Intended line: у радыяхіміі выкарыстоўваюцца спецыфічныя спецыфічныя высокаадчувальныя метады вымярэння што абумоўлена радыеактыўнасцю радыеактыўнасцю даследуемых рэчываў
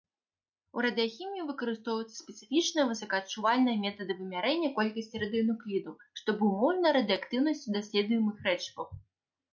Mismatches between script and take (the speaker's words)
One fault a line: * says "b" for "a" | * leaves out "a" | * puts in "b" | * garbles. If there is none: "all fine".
* leaves out "спецыфічныя"
* puts in "колькасці радыенуклідаў"
* leaves out "радыеактыўнасцю"